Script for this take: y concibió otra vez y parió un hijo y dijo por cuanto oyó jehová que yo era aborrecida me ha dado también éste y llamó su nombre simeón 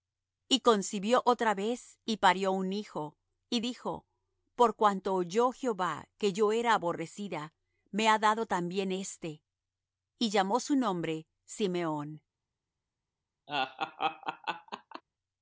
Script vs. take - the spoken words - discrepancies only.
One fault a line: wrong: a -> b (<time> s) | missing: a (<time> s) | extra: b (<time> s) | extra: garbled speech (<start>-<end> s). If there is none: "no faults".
no faults